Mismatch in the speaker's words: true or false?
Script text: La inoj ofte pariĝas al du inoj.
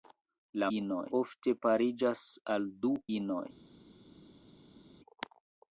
false